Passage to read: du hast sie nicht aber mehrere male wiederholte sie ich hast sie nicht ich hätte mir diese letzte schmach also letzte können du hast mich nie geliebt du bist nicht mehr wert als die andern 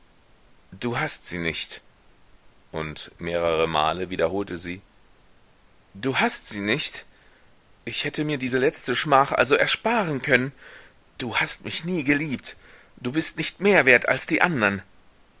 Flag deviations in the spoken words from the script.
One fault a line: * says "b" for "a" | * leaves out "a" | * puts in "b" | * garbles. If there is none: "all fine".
* says "und" for "aber"
* says "du" for "ich"
* says "ersparen" for "letzte"